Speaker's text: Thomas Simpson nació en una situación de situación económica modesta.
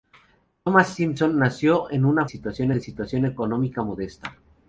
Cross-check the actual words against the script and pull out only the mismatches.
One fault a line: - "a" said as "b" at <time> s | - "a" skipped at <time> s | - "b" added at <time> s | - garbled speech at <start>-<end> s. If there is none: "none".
none